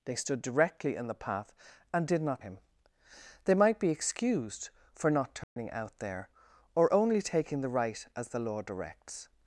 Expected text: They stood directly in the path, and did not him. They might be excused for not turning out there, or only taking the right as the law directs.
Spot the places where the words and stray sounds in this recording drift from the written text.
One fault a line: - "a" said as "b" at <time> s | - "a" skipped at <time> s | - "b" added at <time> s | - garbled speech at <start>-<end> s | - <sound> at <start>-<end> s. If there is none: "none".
- dropout at 5.4-5.6 s